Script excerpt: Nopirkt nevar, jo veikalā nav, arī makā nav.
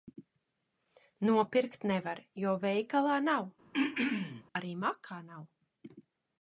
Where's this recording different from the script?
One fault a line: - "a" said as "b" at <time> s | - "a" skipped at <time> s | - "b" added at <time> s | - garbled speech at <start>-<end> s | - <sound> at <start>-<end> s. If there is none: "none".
- throat clearing at 3.7-4.4 s